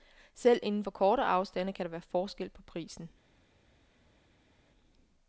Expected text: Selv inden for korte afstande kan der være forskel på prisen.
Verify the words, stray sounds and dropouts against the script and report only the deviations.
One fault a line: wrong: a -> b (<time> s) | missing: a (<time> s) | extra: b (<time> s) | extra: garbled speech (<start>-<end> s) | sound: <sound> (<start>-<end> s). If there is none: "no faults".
no faults